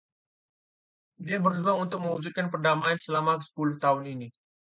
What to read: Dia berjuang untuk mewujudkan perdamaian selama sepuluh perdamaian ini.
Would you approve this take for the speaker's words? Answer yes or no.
no